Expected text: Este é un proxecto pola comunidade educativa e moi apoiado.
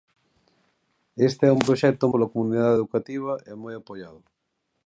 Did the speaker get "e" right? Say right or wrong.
right